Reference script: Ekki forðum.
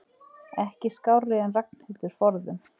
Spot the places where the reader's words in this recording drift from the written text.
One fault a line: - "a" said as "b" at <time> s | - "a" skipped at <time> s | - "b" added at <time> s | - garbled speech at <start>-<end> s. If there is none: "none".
- "skárri en Ragnhildur" added at 0.9 s